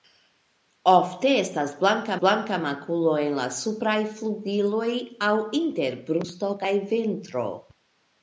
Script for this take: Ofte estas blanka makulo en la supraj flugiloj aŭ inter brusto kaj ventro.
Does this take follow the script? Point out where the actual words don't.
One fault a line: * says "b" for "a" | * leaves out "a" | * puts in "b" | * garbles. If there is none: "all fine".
* puts in "blanka"